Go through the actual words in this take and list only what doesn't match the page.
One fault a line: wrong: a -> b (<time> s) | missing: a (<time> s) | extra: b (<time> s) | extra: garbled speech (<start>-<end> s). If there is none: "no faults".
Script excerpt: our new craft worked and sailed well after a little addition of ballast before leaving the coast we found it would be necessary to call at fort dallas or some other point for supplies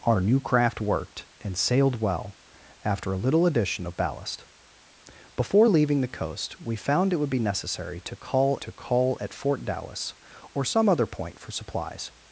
extra: to call (8.6 s)